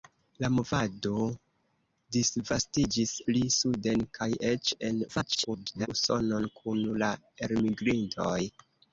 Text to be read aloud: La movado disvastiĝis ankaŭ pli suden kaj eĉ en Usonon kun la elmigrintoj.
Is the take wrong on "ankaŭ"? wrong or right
wrong